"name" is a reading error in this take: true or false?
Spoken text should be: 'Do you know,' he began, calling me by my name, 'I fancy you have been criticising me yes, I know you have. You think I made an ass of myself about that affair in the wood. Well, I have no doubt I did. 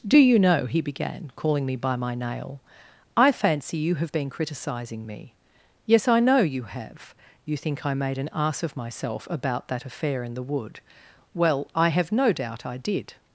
true